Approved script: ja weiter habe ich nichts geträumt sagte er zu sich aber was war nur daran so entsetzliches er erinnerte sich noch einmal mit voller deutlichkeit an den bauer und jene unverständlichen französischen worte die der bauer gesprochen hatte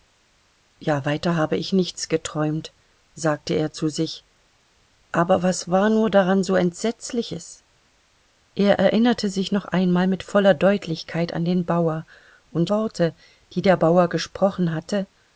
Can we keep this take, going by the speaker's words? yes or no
no